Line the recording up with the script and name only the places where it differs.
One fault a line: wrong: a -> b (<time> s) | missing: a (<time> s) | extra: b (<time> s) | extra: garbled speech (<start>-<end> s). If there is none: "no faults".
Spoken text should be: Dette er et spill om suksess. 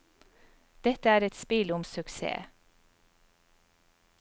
no faults